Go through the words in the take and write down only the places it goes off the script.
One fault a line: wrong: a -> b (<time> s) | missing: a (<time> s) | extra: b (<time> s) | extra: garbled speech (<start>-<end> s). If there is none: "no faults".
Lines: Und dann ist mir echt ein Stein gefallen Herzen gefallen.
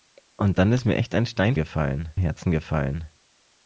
no faults